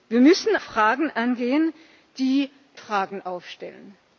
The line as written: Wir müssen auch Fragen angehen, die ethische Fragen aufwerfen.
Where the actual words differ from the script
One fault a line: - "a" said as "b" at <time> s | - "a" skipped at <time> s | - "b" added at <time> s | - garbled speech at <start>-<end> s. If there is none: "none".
- "auch" skipped at 0.6 s
- "ethische" skipped at 2.5 s